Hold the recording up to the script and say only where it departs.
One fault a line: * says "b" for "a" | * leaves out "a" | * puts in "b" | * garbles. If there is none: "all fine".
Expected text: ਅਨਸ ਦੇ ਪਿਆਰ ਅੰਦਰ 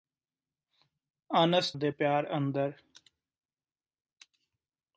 all fine